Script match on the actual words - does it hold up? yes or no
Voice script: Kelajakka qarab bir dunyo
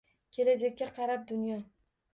no